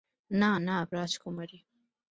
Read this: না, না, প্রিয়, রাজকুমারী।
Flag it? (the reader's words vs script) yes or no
yes